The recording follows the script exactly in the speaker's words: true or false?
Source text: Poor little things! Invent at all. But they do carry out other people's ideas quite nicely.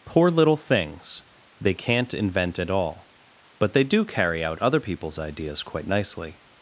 false